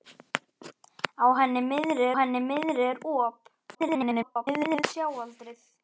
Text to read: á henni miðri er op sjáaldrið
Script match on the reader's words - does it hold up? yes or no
no